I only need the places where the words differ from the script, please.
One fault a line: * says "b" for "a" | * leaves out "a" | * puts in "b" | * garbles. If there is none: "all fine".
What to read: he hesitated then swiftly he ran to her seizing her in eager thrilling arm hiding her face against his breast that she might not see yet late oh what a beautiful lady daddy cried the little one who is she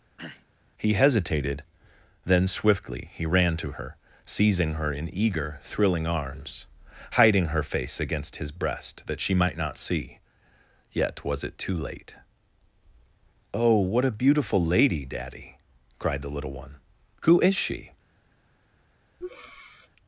* says "arms" for "arm"
* puts in "was it too"